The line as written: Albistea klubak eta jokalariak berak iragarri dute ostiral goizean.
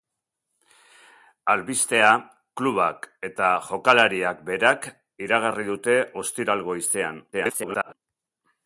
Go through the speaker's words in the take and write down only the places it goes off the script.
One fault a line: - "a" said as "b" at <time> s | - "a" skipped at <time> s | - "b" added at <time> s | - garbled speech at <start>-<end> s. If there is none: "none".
- garbled speech at 7.3-7.9 s